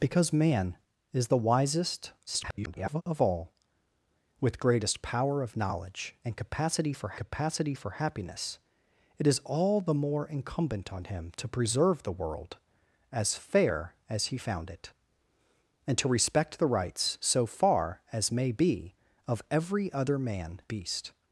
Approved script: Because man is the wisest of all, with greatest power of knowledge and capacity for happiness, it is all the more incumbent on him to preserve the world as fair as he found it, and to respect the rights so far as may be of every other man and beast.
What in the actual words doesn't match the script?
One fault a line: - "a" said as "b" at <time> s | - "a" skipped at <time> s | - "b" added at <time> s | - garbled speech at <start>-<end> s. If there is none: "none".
- garbled speech at 2.3-3.0 s
- "capacity for" added at 7.2 s
- "and" skipped at 20.6 s